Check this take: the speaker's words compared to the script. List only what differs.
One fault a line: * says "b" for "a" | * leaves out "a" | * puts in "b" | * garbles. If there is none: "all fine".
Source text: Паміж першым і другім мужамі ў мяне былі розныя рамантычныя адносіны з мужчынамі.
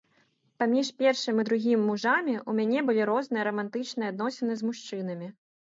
all fine